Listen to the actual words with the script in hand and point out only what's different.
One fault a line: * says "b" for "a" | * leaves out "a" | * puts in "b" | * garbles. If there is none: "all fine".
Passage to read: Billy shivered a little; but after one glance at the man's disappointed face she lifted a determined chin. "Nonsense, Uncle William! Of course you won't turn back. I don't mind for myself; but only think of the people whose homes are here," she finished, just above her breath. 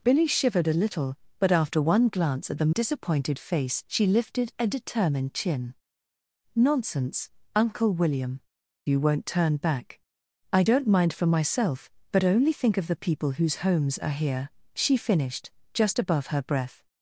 * leaves out "man's"
* leaves out "Of course"